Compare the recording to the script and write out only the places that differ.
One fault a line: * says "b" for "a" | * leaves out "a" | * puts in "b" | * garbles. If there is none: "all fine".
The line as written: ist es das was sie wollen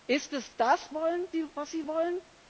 * says "wollen" for "was"